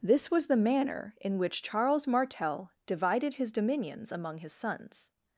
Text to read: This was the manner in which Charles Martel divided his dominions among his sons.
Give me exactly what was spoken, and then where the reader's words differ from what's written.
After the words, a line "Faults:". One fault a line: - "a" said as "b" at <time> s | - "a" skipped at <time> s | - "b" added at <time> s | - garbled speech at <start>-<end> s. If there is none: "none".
This was the manner in which Charles Martel divided his dominions among his sons.
Faults:
none